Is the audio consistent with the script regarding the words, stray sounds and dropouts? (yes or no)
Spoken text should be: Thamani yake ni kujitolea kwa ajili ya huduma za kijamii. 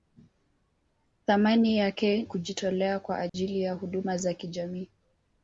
no